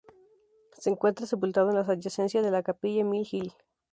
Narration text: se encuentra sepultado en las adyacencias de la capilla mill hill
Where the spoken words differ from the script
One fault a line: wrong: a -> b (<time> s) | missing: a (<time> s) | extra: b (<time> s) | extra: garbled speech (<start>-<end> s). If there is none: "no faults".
no faults